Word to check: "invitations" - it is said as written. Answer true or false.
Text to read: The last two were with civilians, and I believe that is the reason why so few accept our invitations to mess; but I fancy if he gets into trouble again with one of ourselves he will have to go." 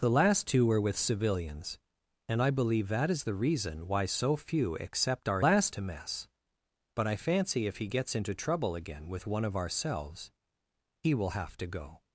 false